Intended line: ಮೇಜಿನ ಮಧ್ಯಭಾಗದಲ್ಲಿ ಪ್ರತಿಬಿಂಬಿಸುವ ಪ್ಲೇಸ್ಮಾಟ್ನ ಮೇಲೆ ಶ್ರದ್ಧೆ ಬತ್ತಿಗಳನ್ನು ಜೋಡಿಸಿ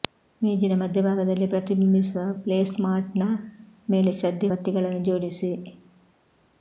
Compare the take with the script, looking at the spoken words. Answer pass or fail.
pass